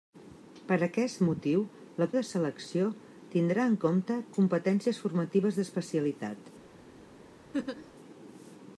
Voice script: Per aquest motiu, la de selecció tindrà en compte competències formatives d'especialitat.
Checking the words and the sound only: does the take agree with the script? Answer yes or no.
no